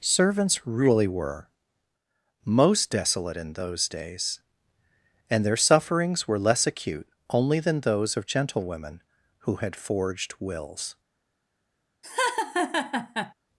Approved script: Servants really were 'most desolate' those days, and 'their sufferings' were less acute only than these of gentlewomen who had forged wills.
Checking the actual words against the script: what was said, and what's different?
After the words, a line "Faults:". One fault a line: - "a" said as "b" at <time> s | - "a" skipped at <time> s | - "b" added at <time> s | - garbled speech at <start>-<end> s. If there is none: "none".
Servants really were 'most desolate' in those days, and 'their sufferings' were less acute only than those of gentlewomen who had forged wills.
Faults:
- "in" added at 3.4 s
- "these" said as "those" at 7.8 s